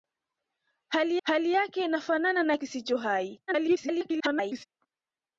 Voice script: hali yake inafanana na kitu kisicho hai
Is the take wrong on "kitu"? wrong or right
wrong